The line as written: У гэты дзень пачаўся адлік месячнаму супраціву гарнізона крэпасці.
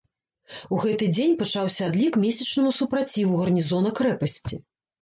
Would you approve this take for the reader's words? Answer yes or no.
yes